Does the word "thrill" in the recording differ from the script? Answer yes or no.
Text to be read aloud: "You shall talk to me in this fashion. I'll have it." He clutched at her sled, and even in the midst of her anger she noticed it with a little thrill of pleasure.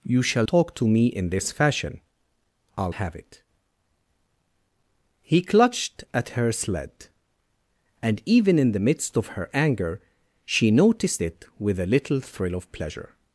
no